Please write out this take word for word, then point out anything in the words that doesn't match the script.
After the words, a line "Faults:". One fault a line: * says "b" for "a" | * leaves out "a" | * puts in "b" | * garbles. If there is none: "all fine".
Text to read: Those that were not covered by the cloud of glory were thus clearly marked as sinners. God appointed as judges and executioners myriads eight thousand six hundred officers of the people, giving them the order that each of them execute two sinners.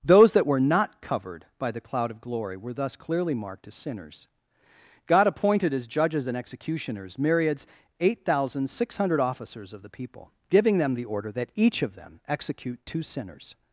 Those that were not covered by the cloud of glory were thus clearly marked as sinners. God appointed as judges and executioners myriads eight thousand six hundred officers of the people, giving them the order that each of them execute two sinners.
Faults:
all fine